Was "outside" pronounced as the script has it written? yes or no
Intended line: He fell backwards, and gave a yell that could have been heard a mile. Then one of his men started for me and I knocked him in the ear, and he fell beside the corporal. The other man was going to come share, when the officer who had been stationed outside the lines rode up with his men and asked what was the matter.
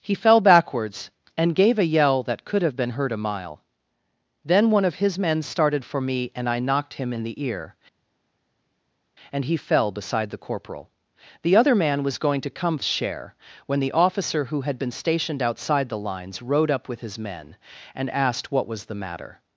yes